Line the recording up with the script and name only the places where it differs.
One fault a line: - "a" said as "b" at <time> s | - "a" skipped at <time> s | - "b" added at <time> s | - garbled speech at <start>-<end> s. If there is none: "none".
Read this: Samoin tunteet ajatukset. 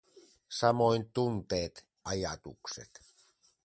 none